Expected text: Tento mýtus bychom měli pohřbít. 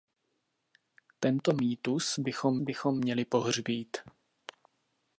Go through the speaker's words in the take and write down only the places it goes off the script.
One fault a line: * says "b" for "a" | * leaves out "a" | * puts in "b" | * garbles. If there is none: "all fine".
* puts in "bychom"